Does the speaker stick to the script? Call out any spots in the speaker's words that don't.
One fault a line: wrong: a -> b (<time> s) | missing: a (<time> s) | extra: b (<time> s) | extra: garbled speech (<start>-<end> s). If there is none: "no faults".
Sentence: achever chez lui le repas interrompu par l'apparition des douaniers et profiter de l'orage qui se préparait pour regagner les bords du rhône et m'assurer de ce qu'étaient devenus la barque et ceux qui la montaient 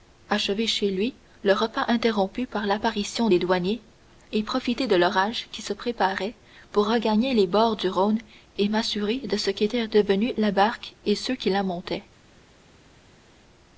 no faults